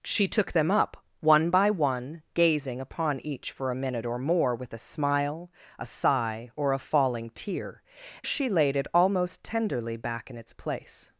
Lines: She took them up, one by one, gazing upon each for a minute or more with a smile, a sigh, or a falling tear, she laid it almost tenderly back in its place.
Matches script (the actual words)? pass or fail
pass